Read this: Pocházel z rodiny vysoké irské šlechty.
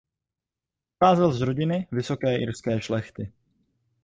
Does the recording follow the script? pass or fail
pass